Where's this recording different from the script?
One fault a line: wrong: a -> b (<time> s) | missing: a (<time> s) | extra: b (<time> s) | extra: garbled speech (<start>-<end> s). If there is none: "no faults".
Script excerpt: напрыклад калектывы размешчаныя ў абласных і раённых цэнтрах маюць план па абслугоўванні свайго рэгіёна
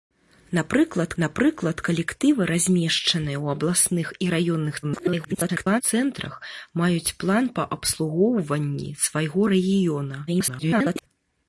extra: напрыклад (1.2 s)
extra: garbled speech (4.8-5.8 s)
extra: garbled speech (10.3-11.1 s)